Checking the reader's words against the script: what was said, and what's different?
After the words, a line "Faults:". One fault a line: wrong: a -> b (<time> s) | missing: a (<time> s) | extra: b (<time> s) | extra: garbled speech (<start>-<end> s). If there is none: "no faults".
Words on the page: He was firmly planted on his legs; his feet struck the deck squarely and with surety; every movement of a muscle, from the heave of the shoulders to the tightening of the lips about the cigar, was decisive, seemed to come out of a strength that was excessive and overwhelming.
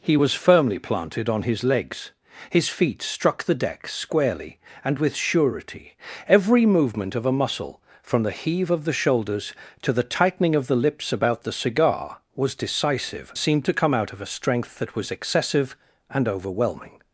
He was firmly planted on his legs; his feet struck the deck squarely and with surety; every movement of a muscle, from the heave of the shoulders to the tightening of the lips about the cigar, was decisive, seemed to come out of a strength that was excessive and overwhelming.
Faults:
no faults